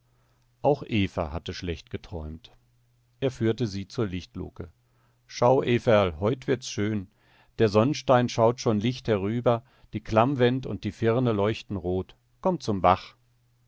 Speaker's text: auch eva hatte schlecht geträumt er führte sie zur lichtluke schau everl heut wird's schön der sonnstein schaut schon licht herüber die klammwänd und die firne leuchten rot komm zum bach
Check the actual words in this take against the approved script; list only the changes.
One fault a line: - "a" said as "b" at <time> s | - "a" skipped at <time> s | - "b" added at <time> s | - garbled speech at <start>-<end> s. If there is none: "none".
none